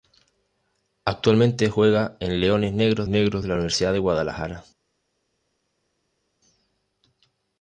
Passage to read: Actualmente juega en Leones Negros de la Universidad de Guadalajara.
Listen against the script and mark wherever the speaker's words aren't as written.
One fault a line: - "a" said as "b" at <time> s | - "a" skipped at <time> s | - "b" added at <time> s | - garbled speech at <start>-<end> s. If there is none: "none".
- "Negros" added at 3.1 s